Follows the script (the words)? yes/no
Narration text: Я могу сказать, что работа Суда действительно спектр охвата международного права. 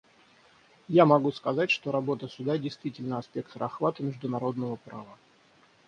yes